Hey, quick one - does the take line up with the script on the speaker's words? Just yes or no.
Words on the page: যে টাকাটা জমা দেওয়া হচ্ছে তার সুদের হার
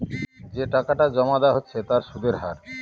yes